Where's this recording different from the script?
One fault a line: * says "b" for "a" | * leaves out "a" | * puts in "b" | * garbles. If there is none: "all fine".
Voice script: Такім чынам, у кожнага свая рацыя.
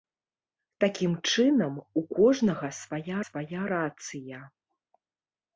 * puts in "свая"